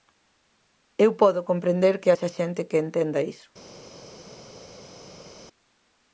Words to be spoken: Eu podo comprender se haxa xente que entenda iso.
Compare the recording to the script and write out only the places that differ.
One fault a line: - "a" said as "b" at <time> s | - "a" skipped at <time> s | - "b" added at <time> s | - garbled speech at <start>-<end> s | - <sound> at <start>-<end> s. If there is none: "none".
- "se" said as "que" at 2.0 s